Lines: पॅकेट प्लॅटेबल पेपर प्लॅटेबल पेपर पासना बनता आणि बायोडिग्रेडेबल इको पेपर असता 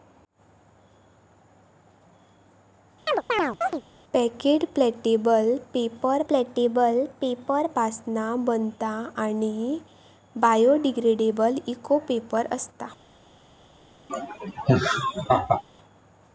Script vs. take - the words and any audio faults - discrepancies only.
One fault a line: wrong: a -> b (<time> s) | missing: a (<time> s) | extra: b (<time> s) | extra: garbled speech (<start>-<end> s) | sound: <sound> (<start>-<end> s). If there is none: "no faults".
sound: chirp (3.1-3.8 s)
sound: laugh (14.1-15.6 s)